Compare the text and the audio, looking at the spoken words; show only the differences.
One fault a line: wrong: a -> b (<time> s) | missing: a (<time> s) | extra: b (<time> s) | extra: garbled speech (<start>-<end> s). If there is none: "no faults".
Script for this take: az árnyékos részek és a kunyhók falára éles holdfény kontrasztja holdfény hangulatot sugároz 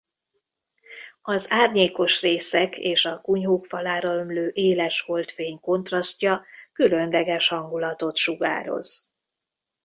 extra: ömlő (4.1 s)
wrong: holdfény -> különleges (6.7 s)